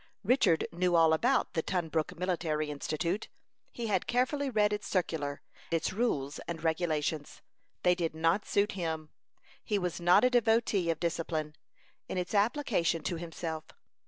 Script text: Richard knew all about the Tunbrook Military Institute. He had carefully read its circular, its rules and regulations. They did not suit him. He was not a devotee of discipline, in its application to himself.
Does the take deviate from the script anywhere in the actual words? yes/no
no